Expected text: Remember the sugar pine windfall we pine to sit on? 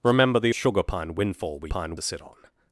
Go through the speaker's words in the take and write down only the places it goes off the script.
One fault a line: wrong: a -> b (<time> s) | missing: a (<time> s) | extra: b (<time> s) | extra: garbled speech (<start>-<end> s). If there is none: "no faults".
no faults